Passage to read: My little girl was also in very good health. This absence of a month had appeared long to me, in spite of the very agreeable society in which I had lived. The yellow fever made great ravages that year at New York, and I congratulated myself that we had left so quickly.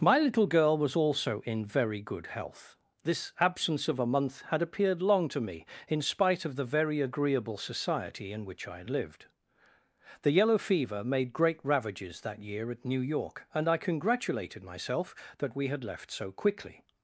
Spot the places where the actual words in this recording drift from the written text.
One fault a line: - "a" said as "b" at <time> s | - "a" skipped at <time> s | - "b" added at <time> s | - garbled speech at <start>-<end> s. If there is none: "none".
none